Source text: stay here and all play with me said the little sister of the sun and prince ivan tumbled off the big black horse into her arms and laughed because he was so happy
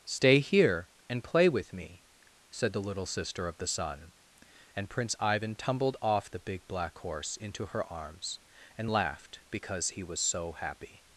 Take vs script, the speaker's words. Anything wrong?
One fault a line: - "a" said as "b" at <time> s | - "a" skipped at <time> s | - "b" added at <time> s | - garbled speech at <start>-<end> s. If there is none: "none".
- "all" skipped at 1.2 s